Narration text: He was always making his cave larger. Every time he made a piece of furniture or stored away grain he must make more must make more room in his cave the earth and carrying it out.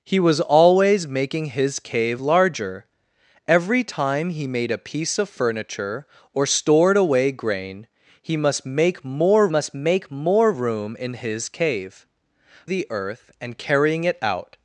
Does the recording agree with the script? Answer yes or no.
yes